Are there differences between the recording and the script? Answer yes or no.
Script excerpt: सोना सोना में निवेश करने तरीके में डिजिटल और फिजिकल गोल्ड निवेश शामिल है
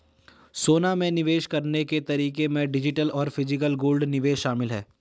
yes